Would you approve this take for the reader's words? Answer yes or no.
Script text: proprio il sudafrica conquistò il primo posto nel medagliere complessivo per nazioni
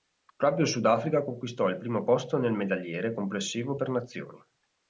yes